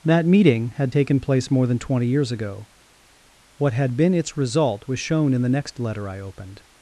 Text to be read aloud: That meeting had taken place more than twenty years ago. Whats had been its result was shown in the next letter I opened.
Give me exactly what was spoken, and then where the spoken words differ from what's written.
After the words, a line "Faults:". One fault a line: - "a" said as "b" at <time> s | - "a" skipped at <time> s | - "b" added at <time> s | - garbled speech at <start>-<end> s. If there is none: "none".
That meeting had taken place more than twenty years ago. What had been its result was shown in the next letter I opened.
Faults:
- "Whats" said as "What" at 3.6 s